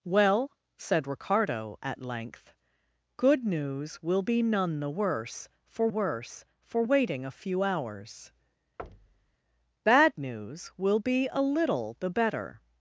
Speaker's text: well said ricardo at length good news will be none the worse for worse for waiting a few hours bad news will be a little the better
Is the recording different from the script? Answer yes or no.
no